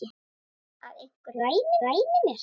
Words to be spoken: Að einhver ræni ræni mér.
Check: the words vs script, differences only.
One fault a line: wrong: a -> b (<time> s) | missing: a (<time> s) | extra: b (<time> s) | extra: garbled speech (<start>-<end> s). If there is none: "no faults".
no faults